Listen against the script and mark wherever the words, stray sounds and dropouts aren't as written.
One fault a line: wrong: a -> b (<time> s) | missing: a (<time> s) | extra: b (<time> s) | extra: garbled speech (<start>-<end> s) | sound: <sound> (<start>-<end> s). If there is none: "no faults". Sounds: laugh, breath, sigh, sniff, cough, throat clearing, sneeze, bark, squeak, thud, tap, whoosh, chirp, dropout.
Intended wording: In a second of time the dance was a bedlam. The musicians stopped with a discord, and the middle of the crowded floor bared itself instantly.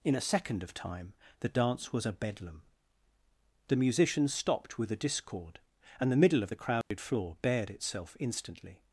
sound: dropout (6.8-6.9 s)